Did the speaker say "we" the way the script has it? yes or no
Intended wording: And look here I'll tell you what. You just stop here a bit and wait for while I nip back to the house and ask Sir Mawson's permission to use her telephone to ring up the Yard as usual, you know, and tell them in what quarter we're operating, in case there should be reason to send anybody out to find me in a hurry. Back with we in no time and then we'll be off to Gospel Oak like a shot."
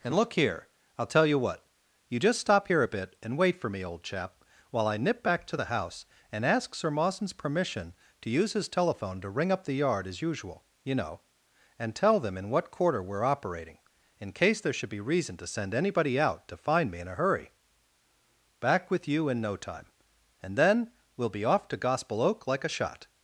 no